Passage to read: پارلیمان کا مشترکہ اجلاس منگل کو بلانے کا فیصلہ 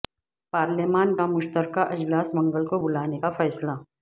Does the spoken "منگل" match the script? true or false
true